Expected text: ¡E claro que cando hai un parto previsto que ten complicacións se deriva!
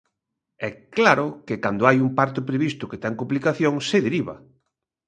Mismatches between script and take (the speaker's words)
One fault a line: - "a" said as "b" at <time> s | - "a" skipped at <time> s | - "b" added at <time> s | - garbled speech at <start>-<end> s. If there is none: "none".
none